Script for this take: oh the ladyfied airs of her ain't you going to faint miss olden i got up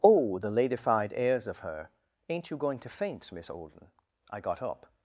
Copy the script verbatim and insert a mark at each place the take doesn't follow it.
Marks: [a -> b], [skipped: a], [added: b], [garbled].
oh the ladyfied airs of her ain't you going to faint miss olden i got up